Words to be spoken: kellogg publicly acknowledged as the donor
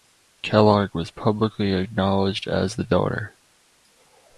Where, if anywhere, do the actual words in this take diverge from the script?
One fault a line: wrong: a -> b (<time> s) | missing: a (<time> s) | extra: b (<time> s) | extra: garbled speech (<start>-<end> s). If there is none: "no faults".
extra: was (0.9 s)